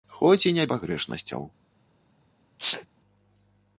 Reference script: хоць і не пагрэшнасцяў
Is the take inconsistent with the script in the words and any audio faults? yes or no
yes